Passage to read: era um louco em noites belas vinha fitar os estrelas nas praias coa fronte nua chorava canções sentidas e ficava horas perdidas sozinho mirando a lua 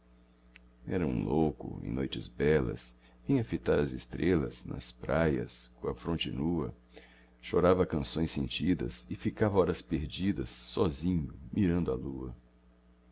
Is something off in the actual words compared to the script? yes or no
yes